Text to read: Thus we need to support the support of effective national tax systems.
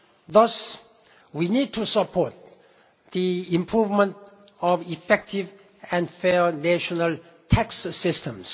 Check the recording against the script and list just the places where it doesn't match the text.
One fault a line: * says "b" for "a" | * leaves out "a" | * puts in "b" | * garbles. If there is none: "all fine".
* says "improvement" for "support"
* puts in "and fair"